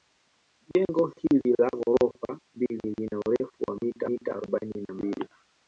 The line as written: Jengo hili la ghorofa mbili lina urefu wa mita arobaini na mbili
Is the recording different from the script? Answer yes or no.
yes